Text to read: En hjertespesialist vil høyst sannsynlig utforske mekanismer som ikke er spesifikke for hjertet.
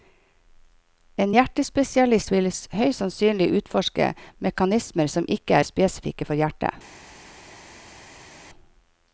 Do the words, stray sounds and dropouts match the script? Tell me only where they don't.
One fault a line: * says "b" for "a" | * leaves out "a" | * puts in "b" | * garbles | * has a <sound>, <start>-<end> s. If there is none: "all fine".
all fine